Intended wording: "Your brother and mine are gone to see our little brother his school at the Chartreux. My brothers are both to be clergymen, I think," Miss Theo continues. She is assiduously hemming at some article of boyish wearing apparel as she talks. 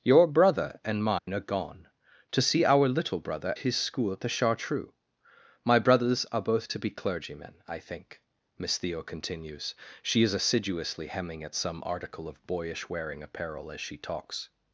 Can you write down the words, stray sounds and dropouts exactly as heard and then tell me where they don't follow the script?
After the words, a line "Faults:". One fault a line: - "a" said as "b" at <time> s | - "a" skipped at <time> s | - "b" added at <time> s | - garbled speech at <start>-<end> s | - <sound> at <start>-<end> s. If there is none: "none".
"Your brother and mine are gone to see our little brother his school at the Chartreux. My brothers are both to be clergymen, I think," Miss Theo continues. She is assiduously hemming at some article of boyish wearing apparel as she talks.
Faults:
- dropout at 1.2-1.3 s